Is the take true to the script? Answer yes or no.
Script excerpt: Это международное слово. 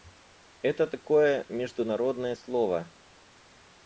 no